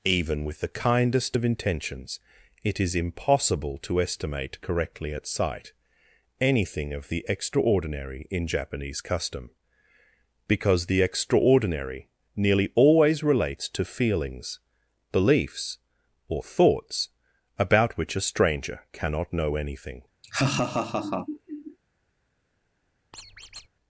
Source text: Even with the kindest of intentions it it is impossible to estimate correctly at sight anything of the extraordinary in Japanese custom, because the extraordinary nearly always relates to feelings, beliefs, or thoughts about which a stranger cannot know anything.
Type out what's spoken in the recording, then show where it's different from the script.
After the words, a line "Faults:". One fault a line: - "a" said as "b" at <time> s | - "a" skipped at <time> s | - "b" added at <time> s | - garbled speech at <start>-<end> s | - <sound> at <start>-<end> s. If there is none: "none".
Even with the kindest of intentions it is impossible to estimate correctly at sight anything of the extraordinary in Japanese custom, because the extraordinary nearly always relates to feelings, beliefs, or thoughts about which a stranger cannot know anything.
Faults:
- "it" skipped at 2.8 s
- laugh at 20.2-21.8 s
- squeak at 23.1-23.7 s